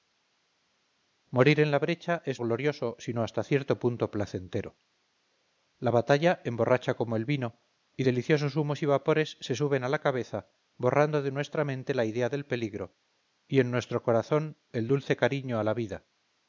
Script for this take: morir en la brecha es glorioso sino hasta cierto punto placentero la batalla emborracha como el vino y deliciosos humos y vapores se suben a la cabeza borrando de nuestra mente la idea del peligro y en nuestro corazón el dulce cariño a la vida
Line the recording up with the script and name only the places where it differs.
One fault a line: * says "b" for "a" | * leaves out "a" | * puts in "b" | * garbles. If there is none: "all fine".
all fine